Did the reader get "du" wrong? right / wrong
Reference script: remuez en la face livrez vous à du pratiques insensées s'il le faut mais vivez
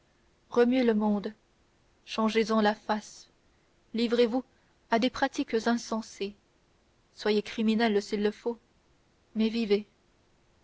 wrong